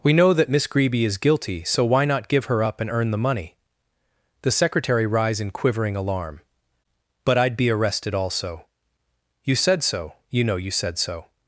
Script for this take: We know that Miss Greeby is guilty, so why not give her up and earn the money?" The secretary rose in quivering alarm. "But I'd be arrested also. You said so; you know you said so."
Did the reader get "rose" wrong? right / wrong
wrong